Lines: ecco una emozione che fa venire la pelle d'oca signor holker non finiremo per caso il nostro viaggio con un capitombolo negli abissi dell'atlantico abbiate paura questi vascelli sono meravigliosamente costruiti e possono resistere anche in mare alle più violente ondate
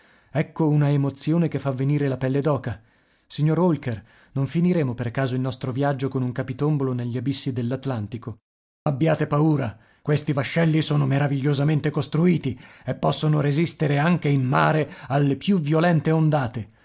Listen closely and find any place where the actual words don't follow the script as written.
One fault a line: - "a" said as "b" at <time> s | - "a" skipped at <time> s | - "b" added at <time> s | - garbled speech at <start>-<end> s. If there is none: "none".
none